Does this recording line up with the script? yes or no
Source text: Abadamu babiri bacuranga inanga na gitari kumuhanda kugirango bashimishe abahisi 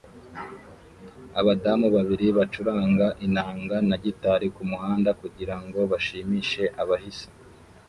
yes